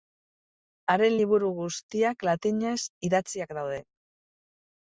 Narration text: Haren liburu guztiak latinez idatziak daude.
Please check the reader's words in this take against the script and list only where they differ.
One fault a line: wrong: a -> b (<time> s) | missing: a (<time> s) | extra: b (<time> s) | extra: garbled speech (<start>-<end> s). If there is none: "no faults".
no faults